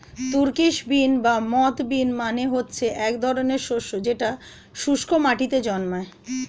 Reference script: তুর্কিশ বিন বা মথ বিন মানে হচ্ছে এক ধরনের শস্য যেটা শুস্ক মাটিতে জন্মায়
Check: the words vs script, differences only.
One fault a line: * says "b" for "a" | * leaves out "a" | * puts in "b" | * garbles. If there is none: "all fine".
all fine